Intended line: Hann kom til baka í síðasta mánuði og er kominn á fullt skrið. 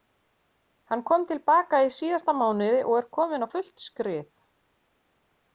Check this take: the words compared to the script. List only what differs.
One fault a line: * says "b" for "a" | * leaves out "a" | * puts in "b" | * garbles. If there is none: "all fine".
all fine